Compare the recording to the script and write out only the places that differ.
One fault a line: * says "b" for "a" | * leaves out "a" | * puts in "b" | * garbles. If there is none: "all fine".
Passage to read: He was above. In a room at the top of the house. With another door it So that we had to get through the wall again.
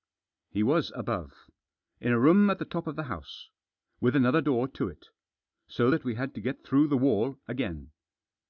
* puts in "to"